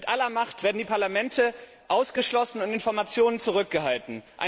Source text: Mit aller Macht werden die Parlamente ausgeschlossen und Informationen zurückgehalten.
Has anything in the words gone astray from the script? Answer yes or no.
no